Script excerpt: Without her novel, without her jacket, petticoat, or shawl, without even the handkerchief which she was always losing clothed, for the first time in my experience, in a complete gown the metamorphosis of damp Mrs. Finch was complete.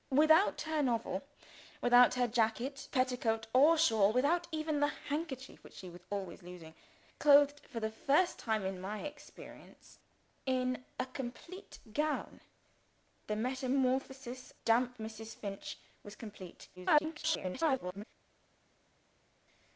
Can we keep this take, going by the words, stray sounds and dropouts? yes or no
no